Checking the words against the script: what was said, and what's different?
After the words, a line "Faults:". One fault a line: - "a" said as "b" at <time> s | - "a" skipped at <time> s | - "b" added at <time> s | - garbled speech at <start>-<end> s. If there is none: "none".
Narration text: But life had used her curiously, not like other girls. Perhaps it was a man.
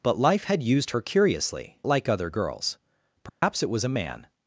But life had used her curiously, like other girls. Perhaps it was a man.
Faults:
- "not" skipped at 1.8 s